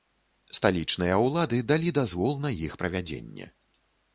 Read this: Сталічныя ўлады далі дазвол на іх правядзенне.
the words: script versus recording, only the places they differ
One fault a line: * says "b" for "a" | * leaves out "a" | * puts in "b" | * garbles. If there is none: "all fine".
all fine